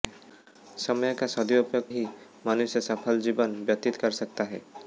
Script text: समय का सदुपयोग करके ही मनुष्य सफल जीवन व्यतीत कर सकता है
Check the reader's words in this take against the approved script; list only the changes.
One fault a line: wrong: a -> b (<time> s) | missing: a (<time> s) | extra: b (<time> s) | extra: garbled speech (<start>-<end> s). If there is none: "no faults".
missing: करके (1.9 s)